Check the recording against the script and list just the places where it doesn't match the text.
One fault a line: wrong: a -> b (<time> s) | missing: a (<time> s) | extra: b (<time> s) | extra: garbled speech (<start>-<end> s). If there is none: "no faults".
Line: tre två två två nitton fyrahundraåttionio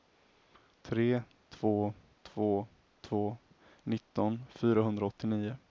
no faults